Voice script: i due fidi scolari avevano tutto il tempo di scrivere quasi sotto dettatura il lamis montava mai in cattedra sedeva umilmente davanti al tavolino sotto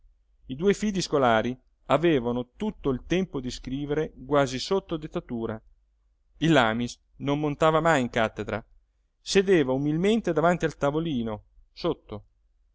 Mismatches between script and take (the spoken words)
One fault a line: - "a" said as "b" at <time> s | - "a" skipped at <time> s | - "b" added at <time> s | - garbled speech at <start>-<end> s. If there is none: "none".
- "non" added at 7.2 s